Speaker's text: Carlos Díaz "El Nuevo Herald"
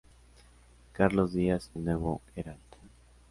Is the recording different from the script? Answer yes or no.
no